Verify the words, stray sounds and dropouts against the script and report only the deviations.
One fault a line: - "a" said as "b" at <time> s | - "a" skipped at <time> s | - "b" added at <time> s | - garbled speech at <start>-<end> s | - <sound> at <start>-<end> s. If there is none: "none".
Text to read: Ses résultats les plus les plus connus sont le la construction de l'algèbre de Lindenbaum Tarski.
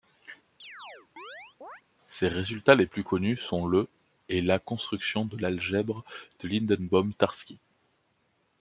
- chirp at 0.6-1.8 s
- "les plus" skipped at 3.0 s
- "et" added at 4.3 s